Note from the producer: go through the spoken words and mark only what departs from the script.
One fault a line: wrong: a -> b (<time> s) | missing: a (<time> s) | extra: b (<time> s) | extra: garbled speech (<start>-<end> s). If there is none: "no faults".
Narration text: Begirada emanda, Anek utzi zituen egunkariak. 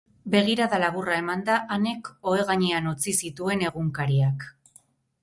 extra: laburra (0.8 s)
extra: ohe gainean (2.3 s)